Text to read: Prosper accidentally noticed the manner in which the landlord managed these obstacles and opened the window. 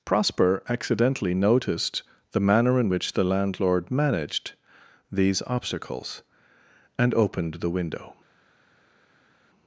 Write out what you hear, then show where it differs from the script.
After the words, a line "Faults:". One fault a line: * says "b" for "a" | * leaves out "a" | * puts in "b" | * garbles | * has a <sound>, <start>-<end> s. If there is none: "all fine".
Prosper accidentally noticed the manner in which the landlord managed these obstacles and opened the window.
Faults:
all fine